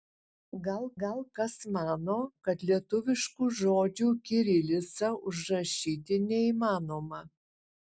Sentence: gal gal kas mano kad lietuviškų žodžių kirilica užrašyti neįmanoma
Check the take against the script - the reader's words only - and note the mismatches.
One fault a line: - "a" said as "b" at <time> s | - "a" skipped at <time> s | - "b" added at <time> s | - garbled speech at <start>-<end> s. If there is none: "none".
none